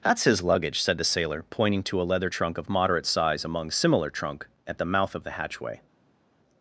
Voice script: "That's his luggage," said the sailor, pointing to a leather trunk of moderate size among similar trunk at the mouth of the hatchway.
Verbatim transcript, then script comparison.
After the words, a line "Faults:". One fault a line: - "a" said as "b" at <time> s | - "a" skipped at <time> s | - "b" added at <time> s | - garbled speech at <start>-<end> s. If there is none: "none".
"That's his luggage," said the sailor, pointing to a leather trunk of moderate size among similar trunk at the mouth of the hatchway.
Faults:
none